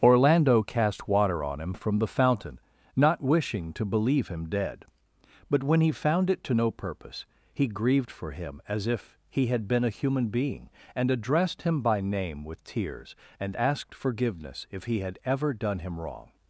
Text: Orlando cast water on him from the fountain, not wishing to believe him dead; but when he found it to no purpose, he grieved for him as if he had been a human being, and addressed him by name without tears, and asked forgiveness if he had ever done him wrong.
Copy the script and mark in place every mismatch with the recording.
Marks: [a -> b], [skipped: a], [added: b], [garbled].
Orlando cast water on him from the fountain, not wishing to believe him dead; but when he found it to no purpose, he grieved for him as if he had been a human being, and addressed him by name [without -> with] tears, and asked forgiveness if he had ever done him wrong.